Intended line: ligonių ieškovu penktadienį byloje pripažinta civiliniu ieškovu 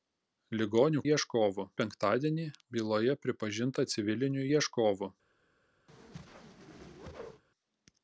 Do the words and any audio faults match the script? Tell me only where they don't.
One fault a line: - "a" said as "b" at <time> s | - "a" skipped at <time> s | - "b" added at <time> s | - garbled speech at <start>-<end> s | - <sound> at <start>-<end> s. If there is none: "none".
- whoosh at 5.9-7.4 s